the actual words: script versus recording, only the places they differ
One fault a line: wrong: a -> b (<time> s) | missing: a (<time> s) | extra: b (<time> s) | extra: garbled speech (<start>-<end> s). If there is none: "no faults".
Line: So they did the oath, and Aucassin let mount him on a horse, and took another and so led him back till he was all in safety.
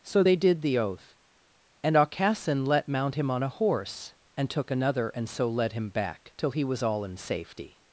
no faults